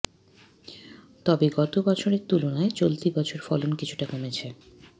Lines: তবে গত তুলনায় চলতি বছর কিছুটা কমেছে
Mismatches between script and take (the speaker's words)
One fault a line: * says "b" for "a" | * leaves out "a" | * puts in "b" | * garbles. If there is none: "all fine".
* puts in "বছরের"
* puts in "ফলন"